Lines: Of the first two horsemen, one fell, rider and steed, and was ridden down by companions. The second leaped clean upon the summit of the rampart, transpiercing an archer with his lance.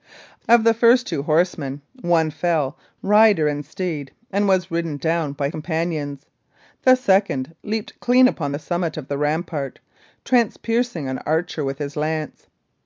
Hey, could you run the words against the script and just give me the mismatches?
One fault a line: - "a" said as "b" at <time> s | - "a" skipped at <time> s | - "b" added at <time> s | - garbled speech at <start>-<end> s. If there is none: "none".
none